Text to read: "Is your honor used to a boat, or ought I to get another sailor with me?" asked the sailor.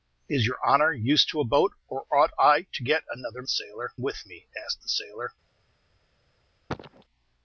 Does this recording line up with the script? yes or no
yes